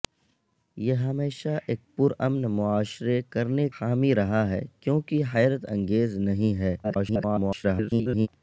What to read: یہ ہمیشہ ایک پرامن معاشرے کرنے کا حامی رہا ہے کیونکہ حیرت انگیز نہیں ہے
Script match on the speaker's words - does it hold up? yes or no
no